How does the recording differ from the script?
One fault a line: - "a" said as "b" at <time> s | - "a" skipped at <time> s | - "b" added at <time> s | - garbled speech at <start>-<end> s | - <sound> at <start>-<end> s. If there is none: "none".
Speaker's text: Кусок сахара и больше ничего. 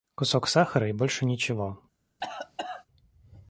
- cough at 2.2-2.9 s